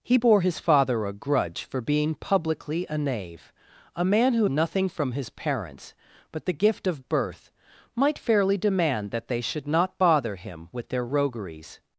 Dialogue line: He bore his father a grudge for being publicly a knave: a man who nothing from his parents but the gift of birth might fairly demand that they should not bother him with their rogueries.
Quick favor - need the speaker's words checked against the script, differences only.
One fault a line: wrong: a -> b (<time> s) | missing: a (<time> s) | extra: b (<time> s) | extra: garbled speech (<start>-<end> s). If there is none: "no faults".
no faults